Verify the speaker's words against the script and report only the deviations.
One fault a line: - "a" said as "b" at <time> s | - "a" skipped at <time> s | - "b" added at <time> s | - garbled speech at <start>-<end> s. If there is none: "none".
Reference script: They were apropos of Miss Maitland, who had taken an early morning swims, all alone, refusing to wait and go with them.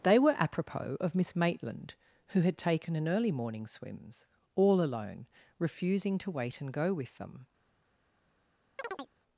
none